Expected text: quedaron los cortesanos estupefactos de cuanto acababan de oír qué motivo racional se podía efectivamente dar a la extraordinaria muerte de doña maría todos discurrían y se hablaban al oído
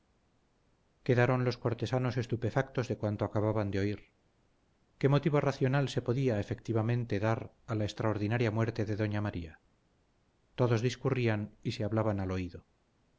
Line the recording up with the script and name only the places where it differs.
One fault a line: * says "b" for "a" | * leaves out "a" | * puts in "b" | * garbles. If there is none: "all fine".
all fine